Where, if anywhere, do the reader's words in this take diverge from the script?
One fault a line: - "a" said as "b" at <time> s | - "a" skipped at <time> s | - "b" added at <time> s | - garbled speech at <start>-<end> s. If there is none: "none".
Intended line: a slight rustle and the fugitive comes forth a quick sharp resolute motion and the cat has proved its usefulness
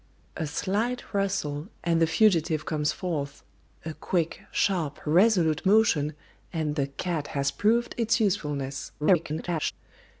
- garbled speech at 9.0-9.7 s